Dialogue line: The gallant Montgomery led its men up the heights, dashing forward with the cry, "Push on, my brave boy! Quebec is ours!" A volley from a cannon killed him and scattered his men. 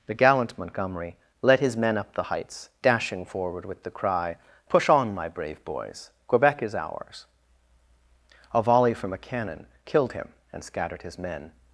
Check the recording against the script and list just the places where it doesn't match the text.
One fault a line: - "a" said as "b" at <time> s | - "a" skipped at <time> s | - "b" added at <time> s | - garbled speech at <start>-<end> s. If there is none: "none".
- "its" said as "his" at 1.6 s
- "boy" said as "boys" at 5.7 s